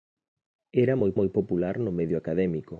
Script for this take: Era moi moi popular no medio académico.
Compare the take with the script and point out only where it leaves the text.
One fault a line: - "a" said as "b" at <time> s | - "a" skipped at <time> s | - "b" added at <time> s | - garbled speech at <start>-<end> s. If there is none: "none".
none